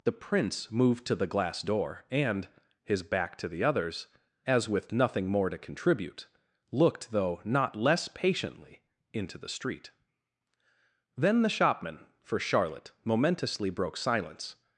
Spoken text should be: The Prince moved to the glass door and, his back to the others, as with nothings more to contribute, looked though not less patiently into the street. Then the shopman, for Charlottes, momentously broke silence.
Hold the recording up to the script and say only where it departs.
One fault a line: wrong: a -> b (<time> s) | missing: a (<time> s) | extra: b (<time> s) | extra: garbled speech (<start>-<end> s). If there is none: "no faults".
wrong: nothings -> nothing (4.9 s)
wrong: Charlottes -> Charlotte (12.4 s)